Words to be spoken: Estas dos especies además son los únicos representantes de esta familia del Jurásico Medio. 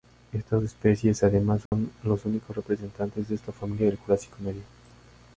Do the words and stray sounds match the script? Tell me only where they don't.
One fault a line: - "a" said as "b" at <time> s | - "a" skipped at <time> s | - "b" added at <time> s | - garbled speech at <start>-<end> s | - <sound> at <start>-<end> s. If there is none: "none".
- "dos" skipped at 0.6 s
- dropout at 1.7-1.7 s